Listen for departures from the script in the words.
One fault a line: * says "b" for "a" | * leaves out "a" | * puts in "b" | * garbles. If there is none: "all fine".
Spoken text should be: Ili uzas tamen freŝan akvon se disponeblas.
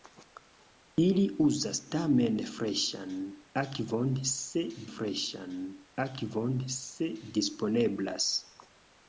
* puts in "freŝan akvon se"